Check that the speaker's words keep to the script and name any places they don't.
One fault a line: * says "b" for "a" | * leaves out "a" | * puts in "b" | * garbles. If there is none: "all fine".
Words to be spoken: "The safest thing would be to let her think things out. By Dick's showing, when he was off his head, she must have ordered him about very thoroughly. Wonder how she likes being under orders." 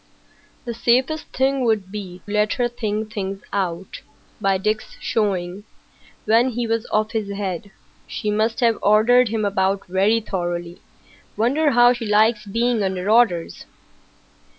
* leaves out "to"